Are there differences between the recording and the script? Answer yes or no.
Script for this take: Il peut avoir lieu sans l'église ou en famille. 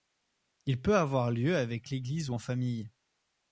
yes